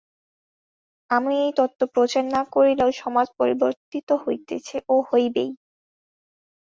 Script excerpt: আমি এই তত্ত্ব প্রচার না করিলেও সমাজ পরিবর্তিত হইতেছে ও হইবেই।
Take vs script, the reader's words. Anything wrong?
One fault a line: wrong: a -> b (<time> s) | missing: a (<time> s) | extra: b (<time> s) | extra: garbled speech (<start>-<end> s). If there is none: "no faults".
no faults